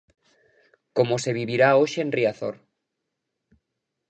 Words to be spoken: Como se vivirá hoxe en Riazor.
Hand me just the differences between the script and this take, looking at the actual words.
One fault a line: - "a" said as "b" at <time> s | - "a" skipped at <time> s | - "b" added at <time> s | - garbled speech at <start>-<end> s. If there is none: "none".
none